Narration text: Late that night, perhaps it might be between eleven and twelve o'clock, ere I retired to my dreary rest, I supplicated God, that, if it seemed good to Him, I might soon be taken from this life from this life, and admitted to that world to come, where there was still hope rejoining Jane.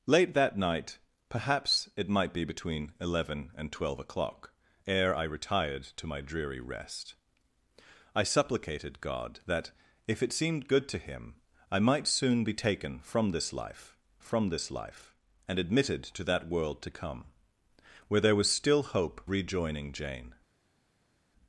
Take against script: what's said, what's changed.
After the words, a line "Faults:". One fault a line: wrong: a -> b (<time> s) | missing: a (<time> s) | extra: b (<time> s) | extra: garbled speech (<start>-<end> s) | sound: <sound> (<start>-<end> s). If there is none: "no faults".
Late that night, perhaps it might be between eleven and twelve o'clock, ere I retired to my dreary rest, I supplicated God, that, if it seemed good to Him, I might soon be taken from this life from this life, and admitted to that world to come, where there was still hope rejoining Jane.
Faults:
no faults